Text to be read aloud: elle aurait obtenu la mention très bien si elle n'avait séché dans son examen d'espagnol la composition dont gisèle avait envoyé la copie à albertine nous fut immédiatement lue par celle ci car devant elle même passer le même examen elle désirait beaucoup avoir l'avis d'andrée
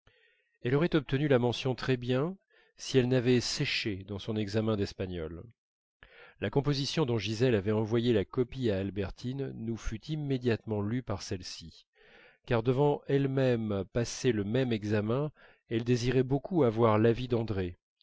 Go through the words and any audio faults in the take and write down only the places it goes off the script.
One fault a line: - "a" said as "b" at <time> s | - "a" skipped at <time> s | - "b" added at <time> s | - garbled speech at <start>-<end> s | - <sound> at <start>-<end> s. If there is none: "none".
none